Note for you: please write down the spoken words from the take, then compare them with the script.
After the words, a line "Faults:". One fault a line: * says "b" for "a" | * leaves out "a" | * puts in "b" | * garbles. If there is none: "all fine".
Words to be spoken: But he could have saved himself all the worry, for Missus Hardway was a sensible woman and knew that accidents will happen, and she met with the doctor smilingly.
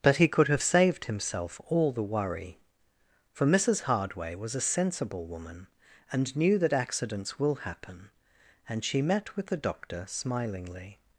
But he could have saved himself all the worry, for Missus Hardway was a sensible woman and knew that accidents will happen, and she met with the doctor smilingly.
Faults:
all fine